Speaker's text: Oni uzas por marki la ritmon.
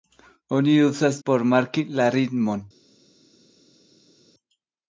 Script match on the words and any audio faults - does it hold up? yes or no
yes